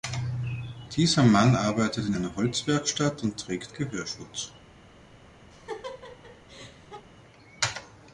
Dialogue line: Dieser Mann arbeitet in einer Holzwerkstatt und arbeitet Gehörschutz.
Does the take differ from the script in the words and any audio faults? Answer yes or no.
yes